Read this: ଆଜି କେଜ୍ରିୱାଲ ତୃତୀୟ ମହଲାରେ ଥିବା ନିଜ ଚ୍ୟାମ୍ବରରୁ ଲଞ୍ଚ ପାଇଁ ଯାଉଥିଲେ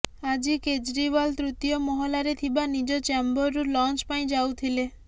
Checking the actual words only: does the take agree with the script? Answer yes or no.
yes